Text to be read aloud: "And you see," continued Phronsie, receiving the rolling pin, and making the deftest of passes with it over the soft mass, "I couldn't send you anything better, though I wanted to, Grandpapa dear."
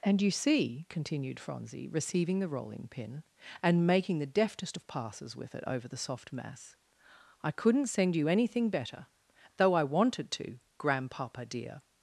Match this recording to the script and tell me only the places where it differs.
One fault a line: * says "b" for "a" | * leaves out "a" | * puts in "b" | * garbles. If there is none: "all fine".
all fine